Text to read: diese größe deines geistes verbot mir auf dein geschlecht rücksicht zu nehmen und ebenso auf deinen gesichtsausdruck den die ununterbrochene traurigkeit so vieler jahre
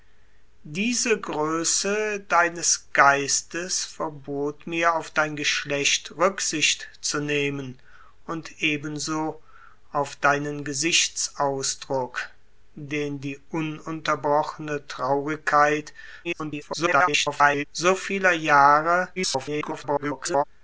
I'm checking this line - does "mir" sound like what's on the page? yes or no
yes